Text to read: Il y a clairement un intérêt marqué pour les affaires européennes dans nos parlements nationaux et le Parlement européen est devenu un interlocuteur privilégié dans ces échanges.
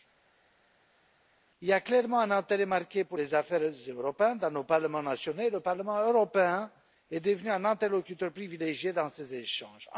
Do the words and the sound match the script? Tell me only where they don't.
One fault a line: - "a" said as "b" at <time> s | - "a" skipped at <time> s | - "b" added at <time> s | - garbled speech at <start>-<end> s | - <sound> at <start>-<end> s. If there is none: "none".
none